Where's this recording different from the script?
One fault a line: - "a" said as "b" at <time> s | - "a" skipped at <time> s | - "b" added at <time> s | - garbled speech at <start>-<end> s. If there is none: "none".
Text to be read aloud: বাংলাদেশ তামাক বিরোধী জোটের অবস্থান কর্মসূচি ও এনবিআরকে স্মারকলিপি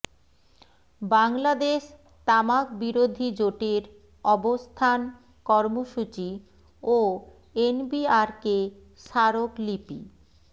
none